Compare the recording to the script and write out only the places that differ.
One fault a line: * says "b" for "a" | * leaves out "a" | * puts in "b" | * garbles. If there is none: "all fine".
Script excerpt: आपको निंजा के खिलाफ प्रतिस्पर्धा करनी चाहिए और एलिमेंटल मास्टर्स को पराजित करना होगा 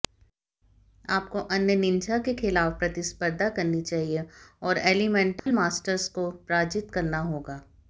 * puts in "अन्य"